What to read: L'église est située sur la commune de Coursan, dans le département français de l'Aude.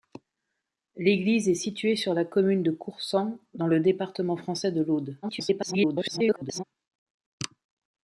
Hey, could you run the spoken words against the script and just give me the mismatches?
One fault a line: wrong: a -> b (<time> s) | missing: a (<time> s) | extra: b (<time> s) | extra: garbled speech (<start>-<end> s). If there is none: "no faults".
extra: garbled speech (5.2-6.6 s)